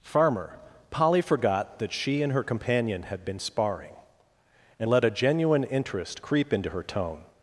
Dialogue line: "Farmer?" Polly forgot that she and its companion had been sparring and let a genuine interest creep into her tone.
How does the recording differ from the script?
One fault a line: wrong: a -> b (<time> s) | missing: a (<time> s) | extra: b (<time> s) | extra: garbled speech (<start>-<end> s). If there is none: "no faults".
wrong: its -> her (2.3 s)